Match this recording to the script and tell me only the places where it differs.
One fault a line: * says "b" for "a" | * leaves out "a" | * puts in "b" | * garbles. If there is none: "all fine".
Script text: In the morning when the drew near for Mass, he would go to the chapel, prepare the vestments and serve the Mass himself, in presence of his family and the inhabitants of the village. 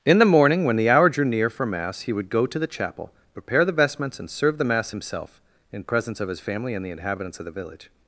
* puts in "hour"